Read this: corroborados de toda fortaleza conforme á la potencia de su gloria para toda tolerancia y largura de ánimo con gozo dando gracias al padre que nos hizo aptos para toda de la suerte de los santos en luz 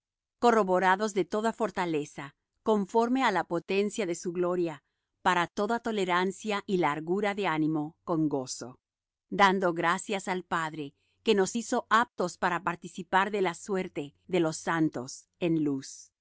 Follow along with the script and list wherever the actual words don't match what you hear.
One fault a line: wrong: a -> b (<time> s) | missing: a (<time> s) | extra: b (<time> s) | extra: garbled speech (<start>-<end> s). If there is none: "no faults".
wrong: toda -> participar (12.6 s)